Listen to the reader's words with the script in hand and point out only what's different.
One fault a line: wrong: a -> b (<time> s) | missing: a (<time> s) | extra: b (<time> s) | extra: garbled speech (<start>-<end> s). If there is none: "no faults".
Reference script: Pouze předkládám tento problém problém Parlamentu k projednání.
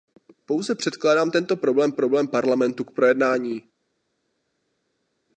no faults